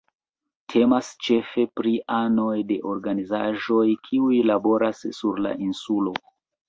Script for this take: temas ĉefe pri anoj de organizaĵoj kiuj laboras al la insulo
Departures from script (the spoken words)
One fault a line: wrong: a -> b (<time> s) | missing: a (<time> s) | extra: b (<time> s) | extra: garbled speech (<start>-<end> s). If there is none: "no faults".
wrong: al -> sur (5.2 s)